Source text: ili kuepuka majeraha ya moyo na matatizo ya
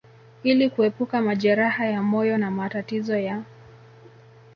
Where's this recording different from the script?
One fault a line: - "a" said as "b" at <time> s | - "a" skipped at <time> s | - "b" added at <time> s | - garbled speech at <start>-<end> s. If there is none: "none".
none